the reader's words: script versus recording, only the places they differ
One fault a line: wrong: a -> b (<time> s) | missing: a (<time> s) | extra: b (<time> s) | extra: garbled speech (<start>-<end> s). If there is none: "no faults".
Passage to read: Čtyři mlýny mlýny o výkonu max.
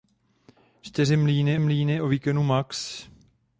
no faults